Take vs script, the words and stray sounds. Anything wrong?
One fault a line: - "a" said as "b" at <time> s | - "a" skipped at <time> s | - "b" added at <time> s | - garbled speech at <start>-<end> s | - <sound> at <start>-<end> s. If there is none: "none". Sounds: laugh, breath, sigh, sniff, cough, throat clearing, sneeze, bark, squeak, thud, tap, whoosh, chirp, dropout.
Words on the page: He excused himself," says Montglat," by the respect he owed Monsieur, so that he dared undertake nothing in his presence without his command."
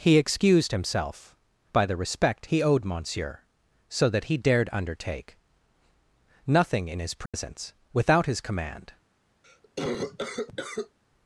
- "says Montglat" skipped at 1.4 s
- dropout at 7.3-7.3 s
- cough at 9.4-11.0 s